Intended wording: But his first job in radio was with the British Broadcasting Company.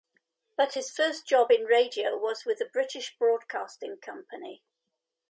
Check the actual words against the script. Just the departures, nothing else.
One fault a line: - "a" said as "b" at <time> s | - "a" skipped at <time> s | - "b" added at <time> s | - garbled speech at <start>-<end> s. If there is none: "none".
none